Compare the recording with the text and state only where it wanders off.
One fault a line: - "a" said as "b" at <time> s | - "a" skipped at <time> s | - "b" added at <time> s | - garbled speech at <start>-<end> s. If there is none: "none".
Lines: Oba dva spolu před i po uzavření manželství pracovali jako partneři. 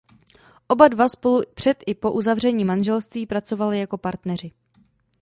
none